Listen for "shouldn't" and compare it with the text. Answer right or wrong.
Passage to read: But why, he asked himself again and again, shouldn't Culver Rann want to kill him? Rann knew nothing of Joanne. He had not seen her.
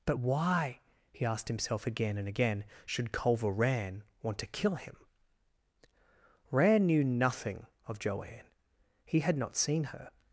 wrong